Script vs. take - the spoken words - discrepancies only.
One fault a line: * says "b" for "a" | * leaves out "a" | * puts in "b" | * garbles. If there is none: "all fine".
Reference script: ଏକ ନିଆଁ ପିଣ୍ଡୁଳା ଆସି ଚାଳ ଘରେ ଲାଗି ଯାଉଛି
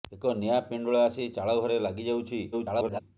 * garbles